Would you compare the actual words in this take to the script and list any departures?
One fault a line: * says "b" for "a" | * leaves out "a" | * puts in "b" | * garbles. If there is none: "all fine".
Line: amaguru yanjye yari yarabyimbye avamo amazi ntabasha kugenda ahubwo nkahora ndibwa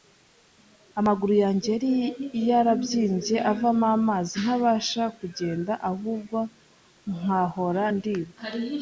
all fine